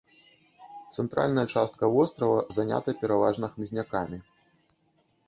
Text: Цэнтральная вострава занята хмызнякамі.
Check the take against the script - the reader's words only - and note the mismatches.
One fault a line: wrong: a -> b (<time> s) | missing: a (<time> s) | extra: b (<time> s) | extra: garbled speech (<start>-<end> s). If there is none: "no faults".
extra: частка (1.6 s)
extra: пераважна (3.0 s)